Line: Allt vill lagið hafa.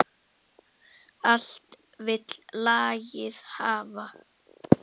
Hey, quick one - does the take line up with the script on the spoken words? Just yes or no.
yes